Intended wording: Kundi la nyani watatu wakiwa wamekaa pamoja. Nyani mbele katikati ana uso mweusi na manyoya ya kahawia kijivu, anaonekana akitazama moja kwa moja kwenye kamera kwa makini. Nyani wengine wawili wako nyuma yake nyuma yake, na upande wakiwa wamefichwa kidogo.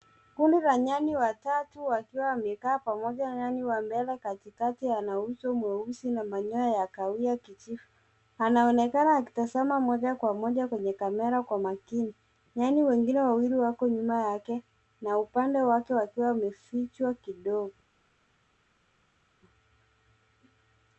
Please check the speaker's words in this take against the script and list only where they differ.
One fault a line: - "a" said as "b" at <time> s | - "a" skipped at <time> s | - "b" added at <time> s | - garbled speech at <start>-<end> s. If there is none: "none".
- "wa" added at 3.6 s
- "nyuma yake" skipped at 14.6 s
- "wake" added at 15.6 s